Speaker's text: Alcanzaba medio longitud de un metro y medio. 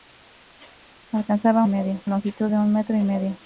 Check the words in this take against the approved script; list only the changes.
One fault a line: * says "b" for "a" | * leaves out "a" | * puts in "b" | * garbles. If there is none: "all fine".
all fine